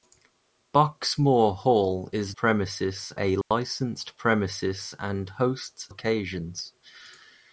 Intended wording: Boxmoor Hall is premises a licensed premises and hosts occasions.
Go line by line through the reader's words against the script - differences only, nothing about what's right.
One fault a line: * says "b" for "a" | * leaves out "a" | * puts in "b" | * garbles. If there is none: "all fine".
all fine